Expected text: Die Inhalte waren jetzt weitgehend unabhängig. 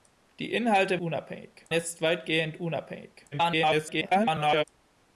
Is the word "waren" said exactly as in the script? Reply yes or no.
no